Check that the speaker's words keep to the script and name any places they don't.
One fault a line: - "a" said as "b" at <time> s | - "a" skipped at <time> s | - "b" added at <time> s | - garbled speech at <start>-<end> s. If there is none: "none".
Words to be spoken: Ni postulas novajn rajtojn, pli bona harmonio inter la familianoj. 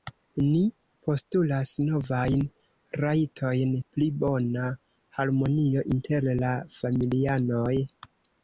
none